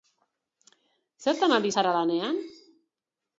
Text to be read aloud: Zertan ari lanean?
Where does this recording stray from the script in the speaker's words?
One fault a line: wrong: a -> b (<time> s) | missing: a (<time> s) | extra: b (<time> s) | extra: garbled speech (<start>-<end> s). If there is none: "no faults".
extra: zara (1.7 s)